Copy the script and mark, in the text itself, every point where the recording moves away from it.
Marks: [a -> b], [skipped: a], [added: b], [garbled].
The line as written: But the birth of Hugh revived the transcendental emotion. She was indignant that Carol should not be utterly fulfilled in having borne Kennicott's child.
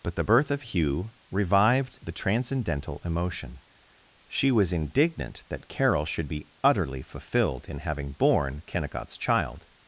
But the birth of Hugh revived the transcendental emotion. She was indignant that Carol should [skipped: not] be utterly fulfilled in having borne Kennicott's child.